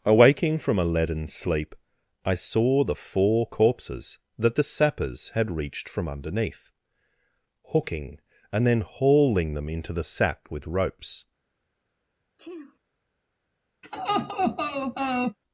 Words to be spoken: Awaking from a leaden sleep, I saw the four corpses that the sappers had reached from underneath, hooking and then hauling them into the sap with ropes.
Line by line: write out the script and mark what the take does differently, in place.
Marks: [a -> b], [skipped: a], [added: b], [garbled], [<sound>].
Awaking from a leaden sleep, I saw the four corpses that the sappers had reached from underneath, hooking and then hauling them into the [sap -> sack] with ropes. [sneeze] [laugh]